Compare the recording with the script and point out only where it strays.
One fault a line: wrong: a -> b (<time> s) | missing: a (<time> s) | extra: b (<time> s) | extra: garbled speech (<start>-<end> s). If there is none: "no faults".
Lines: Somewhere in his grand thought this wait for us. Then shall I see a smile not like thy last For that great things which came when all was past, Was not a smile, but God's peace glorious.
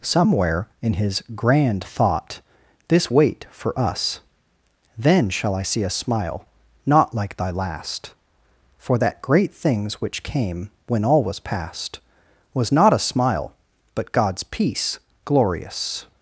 no faults